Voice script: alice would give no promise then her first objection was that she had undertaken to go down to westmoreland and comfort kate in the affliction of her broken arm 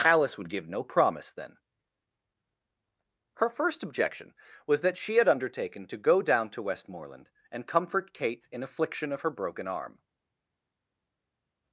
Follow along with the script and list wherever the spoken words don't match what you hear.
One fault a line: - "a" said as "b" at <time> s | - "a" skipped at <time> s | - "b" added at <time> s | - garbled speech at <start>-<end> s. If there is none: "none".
- "the" skipped at 8.6 s